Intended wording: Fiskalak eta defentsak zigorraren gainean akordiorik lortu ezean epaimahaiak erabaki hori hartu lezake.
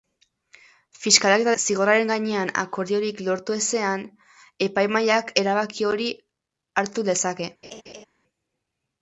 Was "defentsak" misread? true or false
true